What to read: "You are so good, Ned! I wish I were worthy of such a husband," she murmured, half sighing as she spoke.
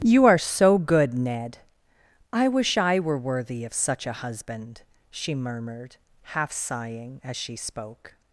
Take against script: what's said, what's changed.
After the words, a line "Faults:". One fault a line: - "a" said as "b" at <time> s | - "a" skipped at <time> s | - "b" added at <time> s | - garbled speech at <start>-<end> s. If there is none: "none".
"You are so good, Ned! I wish I were worthy of such a husband," she murmured, half sighing as she spoke.
Faults:
none